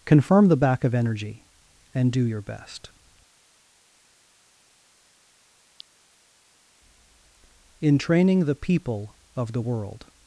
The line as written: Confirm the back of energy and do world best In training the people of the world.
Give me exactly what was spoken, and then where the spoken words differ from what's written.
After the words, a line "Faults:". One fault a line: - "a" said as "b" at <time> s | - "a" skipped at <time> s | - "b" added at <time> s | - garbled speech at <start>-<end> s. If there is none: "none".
Confirm the back of energy and do your best In training the people of the world.
Faults:
- "world" said as "your" at 2.2 s